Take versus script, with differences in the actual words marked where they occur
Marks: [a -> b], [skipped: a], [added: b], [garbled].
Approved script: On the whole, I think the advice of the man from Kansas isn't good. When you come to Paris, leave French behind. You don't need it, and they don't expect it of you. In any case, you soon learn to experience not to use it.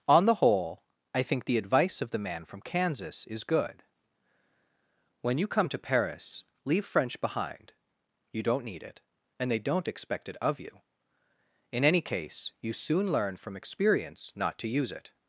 On the whole, I think the advice of the man from Kansas [isn't -> is] good. When you come to Paris, leave French behind. You don't need it, and they don't expect it of you. In any case, you soon learn [to -> from] experience not to use it.